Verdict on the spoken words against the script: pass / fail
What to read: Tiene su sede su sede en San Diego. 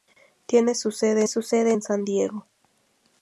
pass